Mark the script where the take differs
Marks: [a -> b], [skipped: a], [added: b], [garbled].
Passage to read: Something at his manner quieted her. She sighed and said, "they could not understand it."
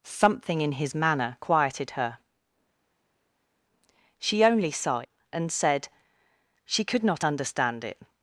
Something [at -> in] his manner quieted her. She [added: only] sighed and said, ["they -> she] could not understand it."